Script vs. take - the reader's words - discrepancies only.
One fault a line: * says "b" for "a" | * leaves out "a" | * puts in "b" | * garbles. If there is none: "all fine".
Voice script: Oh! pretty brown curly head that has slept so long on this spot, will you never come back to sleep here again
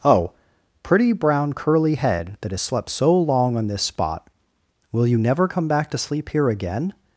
all fine